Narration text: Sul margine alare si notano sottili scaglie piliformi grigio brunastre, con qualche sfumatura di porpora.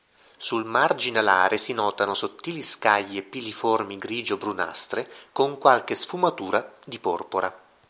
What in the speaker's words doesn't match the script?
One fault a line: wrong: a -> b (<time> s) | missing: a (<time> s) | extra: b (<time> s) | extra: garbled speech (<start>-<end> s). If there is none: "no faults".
no faults